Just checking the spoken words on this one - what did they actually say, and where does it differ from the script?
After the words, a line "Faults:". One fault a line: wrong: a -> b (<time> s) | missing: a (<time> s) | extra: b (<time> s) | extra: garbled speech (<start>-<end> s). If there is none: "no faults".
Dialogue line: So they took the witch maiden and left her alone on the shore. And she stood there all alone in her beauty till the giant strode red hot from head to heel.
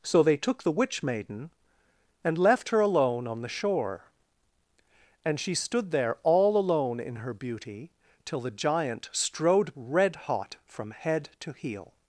So they took the witch maiden and left her alone on the shore. And she stood there all alone in her beauty till the giant strode red hot from head to heel.
Faults:
no faults